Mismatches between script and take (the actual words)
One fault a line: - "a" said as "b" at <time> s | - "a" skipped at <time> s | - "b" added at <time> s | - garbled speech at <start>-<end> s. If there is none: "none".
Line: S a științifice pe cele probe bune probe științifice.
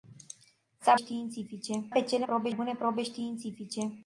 none